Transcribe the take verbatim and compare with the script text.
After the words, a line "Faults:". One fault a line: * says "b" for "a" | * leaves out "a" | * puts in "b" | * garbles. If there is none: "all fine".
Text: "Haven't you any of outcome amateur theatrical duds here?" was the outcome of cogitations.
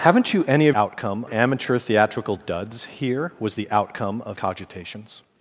"Haven't you any of outcome amateur theatrical duds here?" was the outcome of cogitations.
Faults:
all fine